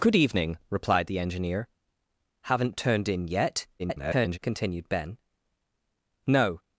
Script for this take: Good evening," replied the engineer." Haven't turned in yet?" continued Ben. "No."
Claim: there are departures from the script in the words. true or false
true